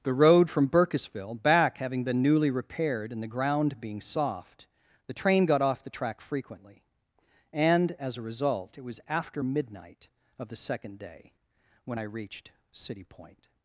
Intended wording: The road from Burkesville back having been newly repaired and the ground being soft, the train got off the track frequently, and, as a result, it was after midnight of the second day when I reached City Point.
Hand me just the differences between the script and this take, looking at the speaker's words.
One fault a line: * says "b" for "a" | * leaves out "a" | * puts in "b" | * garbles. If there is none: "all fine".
all fine